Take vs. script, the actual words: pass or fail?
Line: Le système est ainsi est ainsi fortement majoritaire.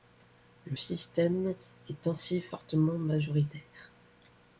fail